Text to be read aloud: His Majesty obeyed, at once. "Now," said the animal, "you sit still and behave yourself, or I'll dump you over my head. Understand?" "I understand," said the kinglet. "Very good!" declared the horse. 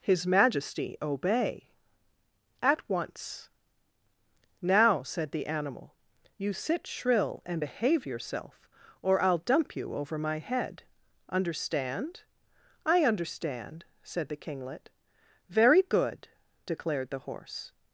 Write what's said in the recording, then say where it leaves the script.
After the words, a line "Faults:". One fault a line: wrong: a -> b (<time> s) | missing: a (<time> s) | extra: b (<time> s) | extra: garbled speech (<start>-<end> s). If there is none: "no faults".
His Majesty obey, at once. "Now," said the animal, "you sit shrill and behave yourself, or I'll dump you over my head. Understand?" "I understand," said the kinglet. "Very good!" declared the horse.
Faults:
wrong: obeyed -> obey (1.0 s)
wrong: still -> shrill (6.9 s)